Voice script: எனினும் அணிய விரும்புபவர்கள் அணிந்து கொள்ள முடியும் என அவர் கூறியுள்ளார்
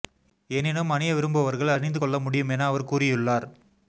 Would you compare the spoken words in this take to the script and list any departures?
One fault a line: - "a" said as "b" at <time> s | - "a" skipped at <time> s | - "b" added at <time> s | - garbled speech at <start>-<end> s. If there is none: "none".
none